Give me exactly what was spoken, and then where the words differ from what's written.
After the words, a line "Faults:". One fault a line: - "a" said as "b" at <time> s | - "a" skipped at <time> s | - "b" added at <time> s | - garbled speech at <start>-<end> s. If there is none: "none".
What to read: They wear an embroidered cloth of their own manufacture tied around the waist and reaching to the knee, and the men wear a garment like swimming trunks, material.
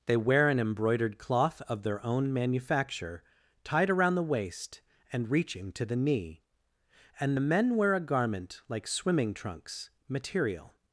They wear an embroidered cloth of their own manufacture tied around the waist and reaching to the knee, and the men wear a garment like swimming trunks, material.
Faults:
none